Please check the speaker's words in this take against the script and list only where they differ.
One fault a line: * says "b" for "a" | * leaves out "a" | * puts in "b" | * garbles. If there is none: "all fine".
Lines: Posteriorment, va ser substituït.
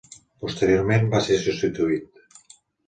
all fine